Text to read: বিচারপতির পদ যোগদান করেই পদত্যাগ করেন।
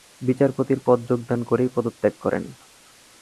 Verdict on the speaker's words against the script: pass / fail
pass